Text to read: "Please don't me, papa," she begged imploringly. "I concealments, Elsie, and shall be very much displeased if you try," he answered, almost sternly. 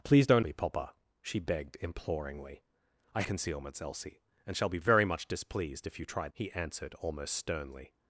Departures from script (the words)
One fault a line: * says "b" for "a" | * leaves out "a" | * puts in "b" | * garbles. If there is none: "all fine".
all fine